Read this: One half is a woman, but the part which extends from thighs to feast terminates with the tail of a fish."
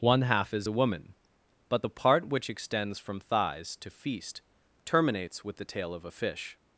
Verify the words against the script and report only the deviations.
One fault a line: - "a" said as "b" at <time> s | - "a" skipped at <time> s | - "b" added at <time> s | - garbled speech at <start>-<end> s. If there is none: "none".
none